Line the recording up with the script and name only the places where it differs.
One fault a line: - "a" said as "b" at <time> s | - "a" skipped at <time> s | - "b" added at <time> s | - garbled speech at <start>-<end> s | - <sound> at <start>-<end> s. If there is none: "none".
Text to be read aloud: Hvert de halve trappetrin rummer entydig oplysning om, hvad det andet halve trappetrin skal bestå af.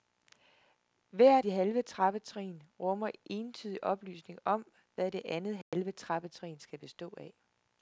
- dropout at 5.6-5.7 s